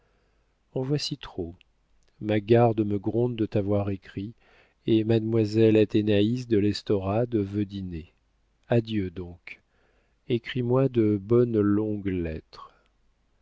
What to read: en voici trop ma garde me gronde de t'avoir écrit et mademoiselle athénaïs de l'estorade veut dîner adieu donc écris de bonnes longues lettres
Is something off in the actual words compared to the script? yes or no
yes